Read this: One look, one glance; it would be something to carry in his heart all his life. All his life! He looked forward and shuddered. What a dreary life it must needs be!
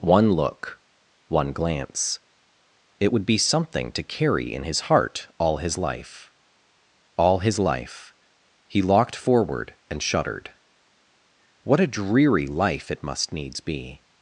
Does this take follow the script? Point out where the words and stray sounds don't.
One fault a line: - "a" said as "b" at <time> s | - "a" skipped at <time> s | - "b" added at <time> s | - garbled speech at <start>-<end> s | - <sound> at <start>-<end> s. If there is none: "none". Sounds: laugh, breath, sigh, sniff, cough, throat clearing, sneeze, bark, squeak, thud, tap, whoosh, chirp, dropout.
- "looked" said as "locked" at 8.8 s